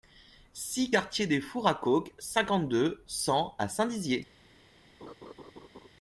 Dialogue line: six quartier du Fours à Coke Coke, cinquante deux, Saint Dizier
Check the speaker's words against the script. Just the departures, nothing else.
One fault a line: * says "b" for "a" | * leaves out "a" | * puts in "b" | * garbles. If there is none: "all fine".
* says "des" for "du"
* leaves out "Coke"
* puts in "cent à"